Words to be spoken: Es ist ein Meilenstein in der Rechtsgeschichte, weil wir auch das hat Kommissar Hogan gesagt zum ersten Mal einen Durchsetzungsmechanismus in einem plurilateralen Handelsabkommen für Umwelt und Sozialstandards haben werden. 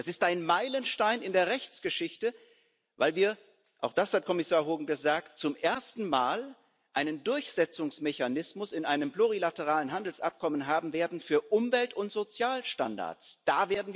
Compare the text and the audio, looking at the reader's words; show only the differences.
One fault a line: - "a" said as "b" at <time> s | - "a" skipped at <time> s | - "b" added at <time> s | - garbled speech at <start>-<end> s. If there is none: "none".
none